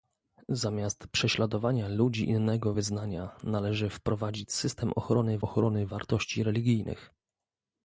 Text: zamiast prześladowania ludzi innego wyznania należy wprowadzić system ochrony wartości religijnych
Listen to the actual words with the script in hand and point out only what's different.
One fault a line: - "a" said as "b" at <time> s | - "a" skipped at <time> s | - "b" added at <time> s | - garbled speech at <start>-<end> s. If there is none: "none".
- "ochrony" added at 5.4 s